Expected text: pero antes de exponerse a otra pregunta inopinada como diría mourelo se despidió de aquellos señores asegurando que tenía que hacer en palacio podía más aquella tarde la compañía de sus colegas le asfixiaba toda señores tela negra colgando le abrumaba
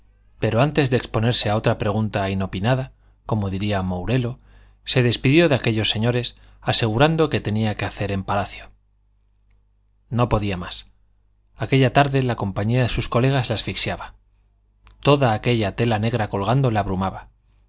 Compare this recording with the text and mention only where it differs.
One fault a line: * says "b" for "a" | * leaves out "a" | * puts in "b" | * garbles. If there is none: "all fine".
* puts in "no"
* says "aquella" for "señores"